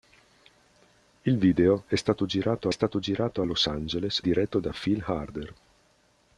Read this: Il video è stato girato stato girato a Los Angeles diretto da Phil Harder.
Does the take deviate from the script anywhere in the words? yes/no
no